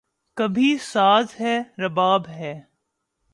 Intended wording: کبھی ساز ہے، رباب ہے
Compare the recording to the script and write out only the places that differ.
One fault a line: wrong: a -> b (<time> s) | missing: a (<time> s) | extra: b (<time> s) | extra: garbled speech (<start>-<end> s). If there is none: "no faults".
no faults